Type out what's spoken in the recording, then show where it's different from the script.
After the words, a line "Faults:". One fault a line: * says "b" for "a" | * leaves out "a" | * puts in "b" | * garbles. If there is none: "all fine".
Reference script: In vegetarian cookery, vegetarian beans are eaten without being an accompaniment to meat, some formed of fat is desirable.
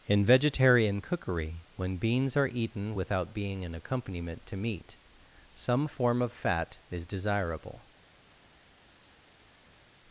In vegetarian cookery, when beans are eaten without being an accompaniment to meat, some form of fat is desirable.
Faults:
* says "when" for "vegetarian"
* says "form" for "formed"